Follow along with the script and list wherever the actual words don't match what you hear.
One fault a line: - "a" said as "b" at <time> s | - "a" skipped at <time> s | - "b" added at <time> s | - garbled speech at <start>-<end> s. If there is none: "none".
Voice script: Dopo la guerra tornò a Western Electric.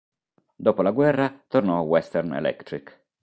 none